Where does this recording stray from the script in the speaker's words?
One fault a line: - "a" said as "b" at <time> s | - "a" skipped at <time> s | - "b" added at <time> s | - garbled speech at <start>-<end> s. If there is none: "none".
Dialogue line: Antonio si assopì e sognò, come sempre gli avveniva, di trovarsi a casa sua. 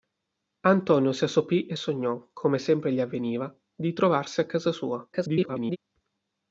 - garbled speech at 5.1-5.8 s